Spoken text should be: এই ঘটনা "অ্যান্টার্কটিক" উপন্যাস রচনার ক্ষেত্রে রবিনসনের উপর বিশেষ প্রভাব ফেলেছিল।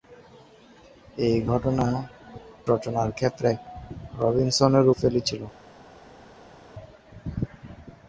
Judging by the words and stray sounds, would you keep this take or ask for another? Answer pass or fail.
fail